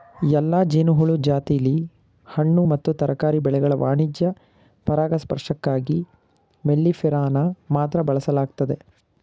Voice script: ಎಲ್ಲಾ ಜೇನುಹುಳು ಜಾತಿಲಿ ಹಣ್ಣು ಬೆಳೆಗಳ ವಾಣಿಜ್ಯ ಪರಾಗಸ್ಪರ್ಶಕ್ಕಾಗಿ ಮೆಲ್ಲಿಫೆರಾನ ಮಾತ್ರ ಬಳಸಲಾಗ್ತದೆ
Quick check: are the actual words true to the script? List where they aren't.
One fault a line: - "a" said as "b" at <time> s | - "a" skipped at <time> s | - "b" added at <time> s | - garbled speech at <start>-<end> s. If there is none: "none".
- "ಮತ್ತು ತರಕಾರಿ" added at 2.6 s